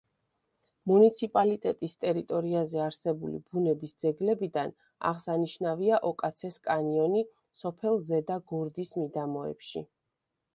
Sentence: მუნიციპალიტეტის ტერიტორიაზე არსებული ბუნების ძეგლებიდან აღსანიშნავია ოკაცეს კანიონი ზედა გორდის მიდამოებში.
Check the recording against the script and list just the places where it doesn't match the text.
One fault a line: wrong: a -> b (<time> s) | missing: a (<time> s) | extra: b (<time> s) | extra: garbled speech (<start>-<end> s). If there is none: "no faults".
extra: სოფელ (7.7 s)